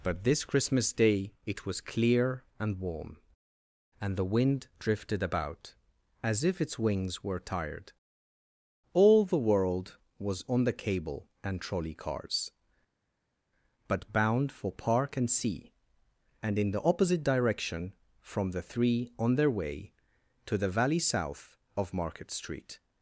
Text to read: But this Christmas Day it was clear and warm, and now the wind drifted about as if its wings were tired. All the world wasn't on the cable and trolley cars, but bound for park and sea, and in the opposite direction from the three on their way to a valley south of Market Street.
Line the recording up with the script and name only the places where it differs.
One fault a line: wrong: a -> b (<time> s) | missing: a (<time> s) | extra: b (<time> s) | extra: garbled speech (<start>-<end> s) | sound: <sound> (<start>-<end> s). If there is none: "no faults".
missing: now (4.2 s)
wrong: wasn't -> was (10.2 s)
wrong: a -> the (20.6 s)